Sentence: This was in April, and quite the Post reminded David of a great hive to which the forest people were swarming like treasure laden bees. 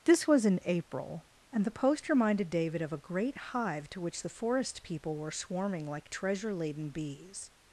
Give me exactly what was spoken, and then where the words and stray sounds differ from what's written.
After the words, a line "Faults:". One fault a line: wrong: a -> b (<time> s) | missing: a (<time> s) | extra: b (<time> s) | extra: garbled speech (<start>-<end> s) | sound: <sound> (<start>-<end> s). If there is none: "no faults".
This was in April, and the Post reminded David of a great hive to which the forest people were swarming like treasure laden bees.
Faults:
missing: quite (1.6 s)